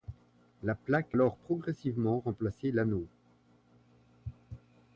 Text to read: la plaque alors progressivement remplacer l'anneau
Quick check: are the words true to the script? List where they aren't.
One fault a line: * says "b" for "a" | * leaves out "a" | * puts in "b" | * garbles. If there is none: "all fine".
all fine